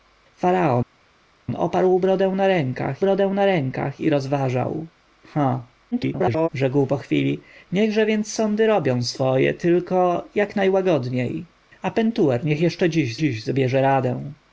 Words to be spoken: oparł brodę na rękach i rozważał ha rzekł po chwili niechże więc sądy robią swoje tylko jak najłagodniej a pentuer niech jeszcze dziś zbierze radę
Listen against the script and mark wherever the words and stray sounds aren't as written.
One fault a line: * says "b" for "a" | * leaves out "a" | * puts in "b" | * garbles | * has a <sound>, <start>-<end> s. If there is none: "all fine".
* puts in "brodę na rękach"
* garbles
* puts in "dziś"